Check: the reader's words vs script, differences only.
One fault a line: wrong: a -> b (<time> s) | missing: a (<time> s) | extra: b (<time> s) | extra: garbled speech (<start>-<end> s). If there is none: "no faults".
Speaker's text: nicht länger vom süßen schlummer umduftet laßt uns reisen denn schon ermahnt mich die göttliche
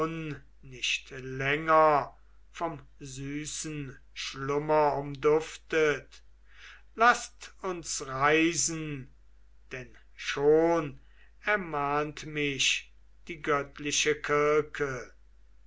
no faults